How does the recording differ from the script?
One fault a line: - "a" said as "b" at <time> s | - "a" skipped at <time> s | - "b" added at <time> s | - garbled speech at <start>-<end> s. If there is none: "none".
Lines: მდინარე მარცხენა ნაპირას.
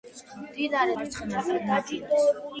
none